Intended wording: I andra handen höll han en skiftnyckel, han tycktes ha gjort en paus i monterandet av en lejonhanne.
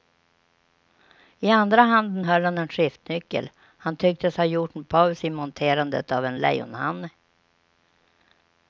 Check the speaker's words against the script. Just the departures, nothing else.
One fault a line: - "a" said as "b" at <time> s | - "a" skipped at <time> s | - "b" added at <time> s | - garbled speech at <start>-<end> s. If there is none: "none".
none